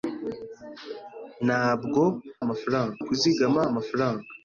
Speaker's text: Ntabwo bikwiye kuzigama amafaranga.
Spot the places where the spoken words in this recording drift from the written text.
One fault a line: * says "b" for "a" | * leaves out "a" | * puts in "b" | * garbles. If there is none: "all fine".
* says "amafaranga" for "bikwiye"